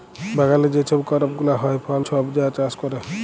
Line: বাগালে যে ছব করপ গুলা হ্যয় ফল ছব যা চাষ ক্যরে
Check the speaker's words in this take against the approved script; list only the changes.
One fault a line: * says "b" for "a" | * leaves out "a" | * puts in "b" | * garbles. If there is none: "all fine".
all fine